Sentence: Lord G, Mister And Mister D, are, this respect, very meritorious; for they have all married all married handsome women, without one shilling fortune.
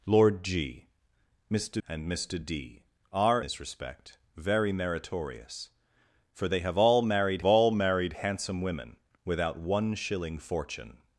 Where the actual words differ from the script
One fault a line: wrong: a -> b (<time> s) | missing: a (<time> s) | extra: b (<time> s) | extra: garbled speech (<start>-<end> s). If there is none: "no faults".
no faults